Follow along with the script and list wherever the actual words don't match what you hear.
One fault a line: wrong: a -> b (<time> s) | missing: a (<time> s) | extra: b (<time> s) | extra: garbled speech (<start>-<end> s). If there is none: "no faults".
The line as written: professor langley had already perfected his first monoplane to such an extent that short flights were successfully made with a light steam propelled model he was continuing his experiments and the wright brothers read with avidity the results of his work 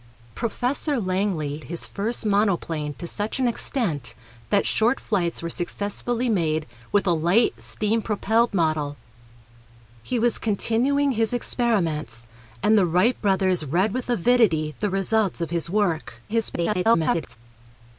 missing: had already perfected (1.6 s)
extra: garbled speech (16.3-17.4 s)